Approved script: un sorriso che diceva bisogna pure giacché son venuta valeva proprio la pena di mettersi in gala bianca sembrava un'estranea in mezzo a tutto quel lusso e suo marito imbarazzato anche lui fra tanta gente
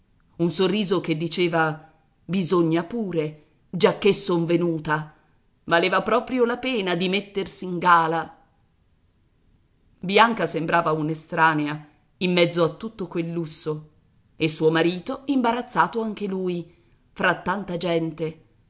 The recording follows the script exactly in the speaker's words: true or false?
true